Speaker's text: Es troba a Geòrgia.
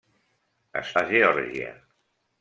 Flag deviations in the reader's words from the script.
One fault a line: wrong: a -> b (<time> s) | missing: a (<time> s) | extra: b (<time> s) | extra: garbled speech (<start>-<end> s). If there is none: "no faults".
missing: troba (0.9 s)